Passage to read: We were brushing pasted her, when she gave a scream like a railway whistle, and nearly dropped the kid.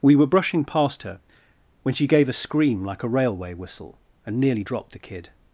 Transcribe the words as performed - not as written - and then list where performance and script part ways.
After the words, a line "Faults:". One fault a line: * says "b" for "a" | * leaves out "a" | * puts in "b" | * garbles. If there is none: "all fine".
We were brushing past her, when she gave a scream like a railway whistle, and nearly dropped the kid.
Faults:
* says "past" for "pasted"